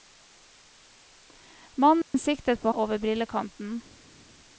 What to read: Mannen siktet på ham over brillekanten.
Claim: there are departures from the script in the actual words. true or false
true